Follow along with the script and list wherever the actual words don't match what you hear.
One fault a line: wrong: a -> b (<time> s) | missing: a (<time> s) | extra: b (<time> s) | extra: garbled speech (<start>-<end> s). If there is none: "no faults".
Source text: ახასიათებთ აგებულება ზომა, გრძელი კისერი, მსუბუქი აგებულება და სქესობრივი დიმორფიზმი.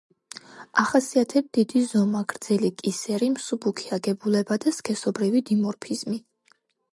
wrong: აგებულება -> დიდი (1.6 s)